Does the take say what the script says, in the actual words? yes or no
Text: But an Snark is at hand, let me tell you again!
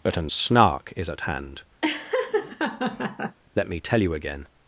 yes